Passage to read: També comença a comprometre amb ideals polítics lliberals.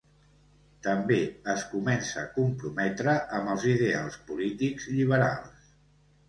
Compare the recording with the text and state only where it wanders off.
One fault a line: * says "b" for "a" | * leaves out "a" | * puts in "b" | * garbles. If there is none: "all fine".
* puts in "es"
* puts in "els"